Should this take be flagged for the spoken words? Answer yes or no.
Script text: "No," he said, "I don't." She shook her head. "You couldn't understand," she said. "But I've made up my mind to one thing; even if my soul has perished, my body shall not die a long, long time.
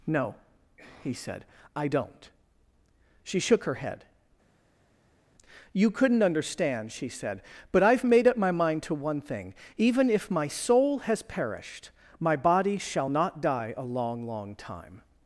no